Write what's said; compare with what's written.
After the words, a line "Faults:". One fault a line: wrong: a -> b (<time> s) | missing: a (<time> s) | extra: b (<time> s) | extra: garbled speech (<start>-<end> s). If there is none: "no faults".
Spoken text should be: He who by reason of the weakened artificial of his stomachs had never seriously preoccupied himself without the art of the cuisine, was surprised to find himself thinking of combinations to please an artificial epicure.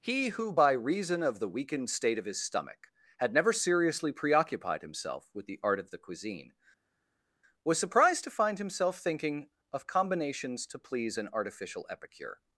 He who by reason of the weakened state of his stomach had never seriously preoccupied himself with the art of the cuisine, was surprised to find himself thinking of combinations to please an artificial epicure.
Faults:
wrong: artificial -> state (1.9 s)
wrong: stomachs -> stomach (2.4 s)
wrong: without -> with (5.3 s)